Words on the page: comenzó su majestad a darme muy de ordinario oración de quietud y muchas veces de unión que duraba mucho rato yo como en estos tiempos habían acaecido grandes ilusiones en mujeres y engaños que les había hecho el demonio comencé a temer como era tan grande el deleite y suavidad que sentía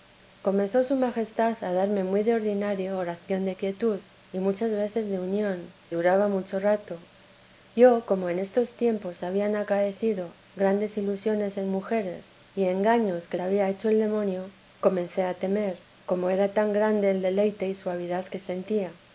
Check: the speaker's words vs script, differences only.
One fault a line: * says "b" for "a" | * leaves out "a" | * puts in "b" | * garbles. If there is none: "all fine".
* leaves out "que"
* leaves out "les"